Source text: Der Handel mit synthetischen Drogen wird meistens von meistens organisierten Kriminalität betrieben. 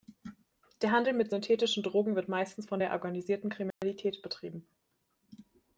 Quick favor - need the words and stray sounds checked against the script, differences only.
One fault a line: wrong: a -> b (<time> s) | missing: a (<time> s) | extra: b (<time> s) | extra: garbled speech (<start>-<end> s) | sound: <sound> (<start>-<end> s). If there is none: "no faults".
wrong: meistens -> der (2.8 s)
sound: dropout (3.7-3.8 s)